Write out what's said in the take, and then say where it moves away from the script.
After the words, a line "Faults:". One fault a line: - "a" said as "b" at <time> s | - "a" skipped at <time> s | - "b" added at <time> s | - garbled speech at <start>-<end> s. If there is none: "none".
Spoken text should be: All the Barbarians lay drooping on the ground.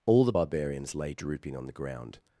All the Barbarians lay drooping on the ground.
Faults:
none